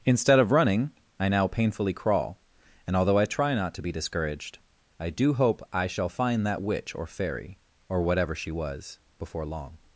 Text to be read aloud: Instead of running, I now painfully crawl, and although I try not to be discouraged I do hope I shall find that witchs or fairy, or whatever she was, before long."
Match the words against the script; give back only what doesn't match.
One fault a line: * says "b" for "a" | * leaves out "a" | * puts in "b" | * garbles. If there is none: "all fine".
* says "witch" for "witchs"